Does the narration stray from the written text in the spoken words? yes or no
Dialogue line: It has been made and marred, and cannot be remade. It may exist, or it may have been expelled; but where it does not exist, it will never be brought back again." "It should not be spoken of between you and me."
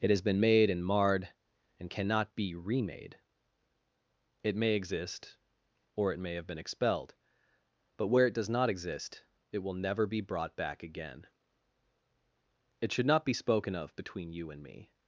no